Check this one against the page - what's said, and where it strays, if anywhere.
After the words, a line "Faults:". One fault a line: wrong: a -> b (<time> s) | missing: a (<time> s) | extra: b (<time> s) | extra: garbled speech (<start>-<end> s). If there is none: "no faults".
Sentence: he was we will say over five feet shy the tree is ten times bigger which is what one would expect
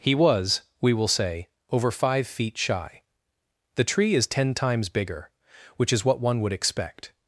he was we will say over five feet shy the tree is ten times bigger which is what one would expect
Faults:
no faults